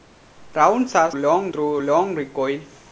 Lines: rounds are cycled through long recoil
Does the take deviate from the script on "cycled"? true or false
true